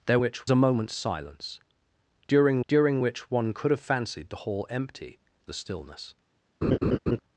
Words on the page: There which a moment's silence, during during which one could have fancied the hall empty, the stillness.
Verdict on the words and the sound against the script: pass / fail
fail